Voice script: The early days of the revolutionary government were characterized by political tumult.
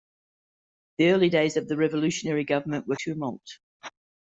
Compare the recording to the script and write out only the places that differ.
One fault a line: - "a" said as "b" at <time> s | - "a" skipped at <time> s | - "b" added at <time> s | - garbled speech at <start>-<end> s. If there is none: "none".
- "characterized by political" skipped at 3.0 s